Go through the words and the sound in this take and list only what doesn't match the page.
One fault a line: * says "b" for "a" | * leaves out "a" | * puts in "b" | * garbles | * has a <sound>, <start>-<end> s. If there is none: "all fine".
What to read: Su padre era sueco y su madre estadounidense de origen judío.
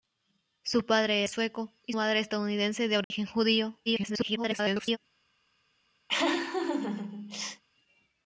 * leaves out "era"
* leaves out "su"
* has a dropout, 3.0-3.1 s
* garbles
* has a laugh, 6.1-7.6 s